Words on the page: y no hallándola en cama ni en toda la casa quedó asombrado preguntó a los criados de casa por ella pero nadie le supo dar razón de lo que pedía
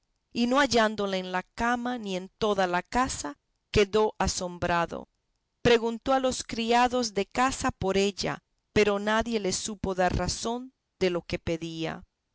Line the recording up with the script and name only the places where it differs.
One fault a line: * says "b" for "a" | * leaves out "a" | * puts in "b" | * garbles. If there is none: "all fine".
* puts in "la"